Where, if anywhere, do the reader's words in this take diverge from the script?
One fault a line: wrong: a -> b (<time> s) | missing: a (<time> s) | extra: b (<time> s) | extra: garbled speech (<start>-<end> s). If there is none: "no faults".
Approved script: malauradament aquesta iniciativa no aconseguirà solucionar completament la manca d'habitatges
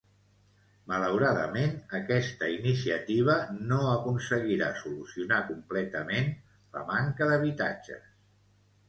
no faults